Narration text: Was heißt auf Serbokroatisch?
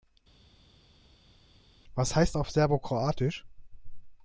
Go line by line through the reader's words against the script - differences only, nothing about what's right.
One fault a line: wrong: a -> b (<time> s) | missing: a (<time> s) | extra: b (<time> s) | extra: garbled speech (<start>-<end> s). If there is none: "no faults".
no faults